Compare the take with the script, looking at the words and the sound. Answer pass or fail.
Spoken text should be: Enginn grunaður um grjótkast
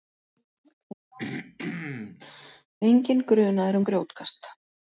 fail